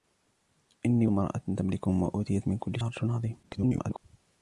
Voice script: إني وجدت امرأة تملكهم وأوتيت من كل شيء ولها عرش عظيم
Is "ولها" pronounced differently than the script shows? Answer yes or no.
yes